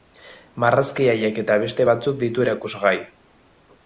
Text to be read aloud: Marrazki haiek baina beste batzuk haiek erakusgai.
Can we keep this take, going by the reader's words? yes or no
no